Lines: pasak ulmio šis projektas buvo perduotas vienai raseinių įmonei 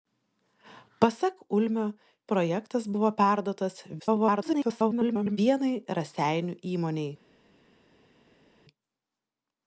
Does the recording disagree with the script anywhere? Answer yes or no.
yes